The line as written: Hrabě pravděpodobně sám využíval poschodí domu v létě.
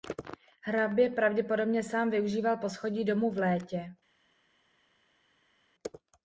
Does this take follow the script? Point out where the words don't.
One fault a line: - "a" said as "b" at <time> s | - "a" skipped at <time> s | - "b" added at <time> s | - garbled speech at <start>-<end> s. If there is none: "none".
none